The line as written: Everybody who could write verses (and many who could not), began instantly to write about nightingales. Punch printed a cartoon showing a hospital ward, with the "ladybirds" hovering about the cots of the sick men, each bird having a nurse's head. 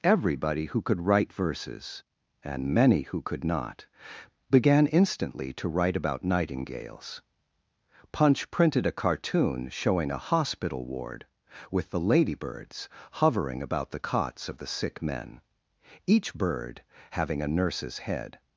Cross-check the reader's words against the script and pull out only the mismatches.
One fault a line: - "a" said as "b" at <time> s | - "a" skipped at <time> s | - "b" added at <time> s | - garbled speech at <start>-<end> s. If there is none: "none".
none